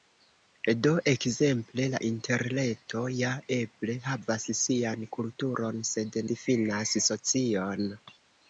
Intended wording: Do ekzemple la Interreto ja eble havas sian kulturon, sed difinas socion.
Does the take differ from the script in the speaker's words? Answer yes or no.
no